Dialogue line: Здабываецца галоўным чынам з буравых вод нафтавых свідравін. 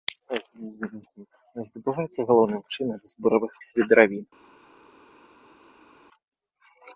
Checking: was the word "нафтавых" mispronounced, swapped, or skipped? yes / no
yes